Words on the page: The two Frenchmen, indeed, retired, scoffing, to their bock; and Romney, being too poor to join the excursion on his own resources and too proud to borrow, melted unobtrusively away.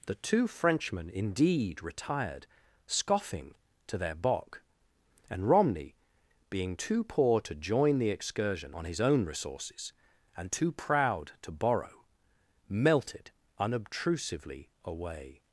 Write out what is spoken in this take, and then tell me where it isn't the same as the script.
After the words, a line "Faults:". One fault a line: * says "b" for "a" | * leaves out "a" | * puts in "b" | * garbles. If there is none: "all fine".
The two Frenchmen, indeed, retired, scoffing, to their bock; and Romney, being too poor to join the excursion on his own resources and too proud to borrow, melted unobtrusively away.
Faults:
all fine